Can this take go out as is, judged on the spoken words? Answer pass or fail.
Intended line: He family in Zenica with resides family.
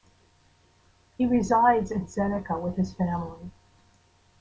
fail